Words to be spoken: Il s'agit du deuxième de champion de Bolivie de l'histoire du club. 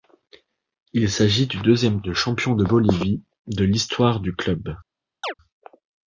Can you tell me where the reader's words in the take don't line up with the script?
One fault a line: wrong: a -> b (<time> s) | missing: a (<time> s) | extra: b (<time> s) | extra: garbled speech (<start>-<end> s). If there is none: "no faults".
no faults